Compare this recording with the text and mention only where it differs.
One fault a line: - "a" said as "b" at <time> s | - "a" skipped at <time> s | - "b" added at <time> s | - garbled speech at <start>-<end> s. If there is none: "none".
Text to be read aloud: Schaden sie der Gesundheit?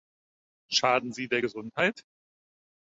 none